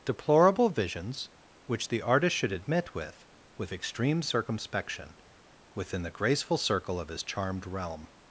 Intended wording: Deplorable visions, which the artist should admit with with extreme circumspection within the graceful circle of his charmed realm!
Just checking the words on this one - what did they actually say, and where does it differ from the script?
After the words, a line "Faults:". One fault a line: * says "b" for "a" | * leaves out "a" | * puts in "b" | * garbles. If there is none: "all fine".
Deplorable visions, which the artist should admit with with extreme circumspection within the graceful circle of his charmed realm!
Faults:
all fine